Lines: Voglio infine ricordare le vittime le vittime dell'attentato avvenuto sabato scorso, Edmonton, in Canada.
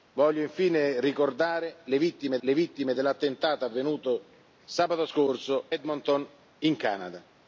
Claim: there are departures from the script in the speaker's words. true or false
false